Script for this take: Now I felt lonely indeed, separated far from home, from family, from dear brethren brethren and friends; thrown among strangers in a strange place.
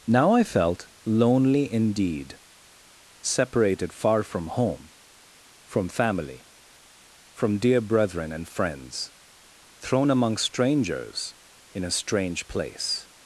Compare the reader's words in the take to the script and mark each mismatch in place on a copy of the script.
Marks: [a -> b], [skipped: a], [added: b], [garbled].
Now I felt lonely indeed, separated far from home, from family, from dear brethren [skipped: brethren] and friends; thrown among strangers in a strange place.